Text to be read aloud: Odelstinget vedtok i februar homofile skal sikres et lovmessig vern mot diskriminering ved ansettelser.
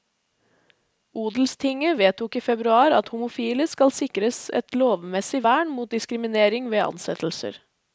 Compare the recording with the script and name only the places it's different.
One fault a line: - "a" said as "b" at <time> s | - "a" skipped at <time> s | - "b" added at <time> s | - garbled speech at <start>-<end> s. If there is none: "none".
- "at" added at 3.0 s